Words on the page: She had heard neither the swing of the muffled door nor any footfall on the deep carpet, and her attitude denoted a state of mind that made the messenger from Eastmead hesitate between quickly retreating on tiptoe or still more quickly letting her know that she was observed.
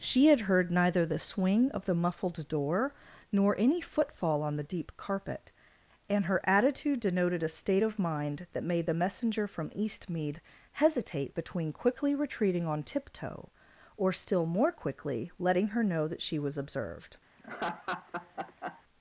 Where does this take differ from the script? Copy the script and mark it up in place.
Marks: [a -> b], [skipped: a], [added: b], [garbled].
She had heard neither the swing of the muffled door nor any footfall on the deep carpet, and her attitude denoted a state of mind that made the messenger from Eastmead hesitate between quickly retreating on tiptoe or still more quickly letting her know that she was observed.